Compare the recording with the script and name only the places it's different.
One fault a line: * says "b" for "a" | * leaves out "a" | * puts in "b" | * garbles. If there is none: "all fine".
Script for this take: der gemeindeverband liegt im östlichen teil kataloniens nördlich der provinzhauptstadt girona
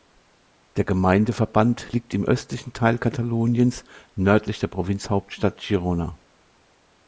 all fine